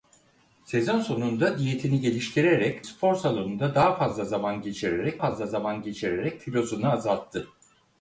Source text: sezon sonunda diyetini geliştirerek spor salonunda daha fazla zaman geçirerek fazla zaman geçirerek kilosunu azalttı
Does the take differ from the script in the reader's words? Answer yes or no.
no